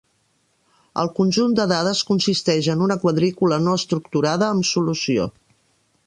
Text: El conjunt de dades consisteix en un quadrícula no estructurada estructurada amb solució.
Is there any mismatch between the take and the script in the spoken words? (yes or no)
yes